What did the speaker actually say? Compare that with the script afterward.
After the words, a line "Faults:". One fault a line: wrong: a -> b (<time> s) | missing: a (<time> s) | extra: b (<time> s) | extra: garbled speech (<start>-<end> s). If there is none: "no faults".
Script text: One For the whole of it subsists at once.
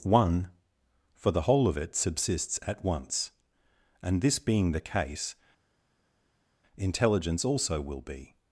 One For the whole of it subsists at once. And this being the case, intelligence also will be
Faults:
extra: And this being the case intelligence also will be (4.0 s)